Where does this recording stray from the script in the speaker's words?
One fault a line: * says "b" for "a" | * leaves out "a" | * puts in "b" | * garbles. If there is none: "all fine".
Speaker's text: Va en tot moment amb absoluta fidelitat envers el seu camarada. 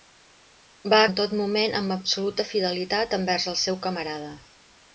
all fine